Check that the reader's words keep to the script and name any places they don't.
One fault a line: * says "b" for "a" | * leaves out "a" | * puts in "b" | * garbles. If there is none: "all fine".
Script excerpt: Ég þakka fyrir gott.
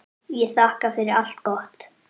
* puts in "allt"